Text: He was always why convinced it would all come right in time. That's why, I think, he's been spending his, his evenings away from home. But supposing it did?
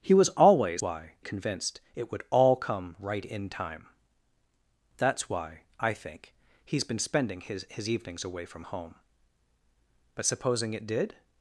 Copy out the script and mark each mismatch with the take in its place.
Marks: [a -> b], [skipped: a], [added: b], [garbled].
He was always why convinced it would all come right in time. That's why, I think, he's been spending his, his evenings away from home. But supposing it did?